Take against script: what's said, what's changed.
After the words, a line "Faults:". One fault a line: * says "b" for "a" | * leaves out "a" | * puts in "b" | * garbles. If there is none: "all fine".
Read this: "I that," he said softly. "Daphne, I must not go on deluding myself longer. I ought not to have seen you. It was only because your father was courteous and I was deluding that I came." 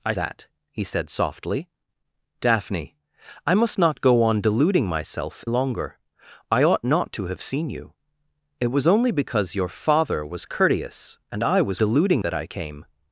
"I that," he said softly. "Daphne, I must not go on deluding myself longer. I ought not to have seen you. It was only because your father was courteous and I was deluding that I came."
Faults:
all fine